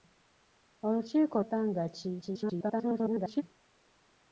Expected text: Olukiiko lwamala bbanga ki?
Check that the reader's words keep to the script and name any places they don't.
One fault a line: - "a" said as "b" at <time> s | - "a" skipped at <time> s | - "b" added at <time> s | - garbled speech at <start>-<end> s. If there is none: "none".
- "lwamala" skipped at 1.4 s
- garbled speech at 2.2-3.4 s